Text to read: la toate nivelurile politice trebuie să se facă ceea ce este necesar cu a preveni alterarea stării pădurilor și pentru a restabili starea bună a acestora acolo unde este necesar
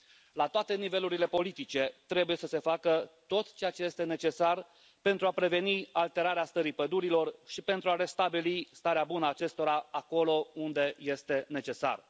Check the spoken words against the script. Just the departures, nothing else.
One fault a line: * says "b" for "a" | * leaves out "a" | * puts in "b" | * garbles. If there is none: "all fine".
* puts in "tot"
* says "pentru" for "cu"